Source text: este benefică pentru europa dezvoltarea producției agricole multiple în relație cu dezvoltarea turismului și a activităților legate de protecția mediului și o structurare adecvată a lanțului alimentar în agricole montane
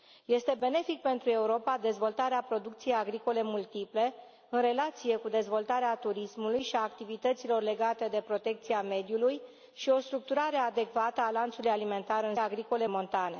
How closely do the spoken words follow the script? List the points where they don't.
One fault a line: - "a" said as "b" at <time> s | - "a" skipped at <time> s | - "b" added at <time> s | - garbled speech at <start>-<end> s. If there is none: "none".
none